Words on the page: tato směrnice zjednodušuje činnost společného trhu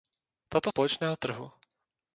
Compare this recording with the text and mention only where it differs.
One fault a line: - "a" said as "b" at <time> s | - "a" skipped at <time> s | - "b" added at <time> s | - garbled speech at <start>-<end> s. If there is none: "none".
- "směrnice zjednodušuje činnost" skipped at 0.7 s